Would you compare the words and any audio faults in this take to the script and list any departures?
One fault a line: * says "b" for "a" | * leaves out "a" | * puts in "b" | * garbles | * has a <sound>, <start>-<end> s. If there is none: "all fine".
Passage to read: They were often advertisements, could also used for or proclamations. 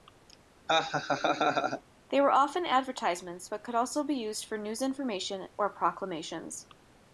* has a laugh, 0.7-1.8 s
* puts in "but"
* puts in "be"
* puts in "news information"